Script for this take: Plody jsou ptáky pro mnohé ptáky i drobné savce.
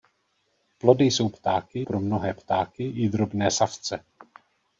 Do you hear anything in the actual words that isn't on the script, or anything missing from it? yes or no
no